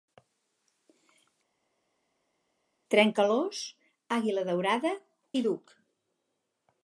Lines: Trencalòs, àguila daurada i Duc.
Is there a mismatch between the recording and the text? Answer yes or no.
no